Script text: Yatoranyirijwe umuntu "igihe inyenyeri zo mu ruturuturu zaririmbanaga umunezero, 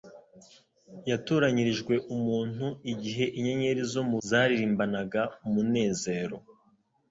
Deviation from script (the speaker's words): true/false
true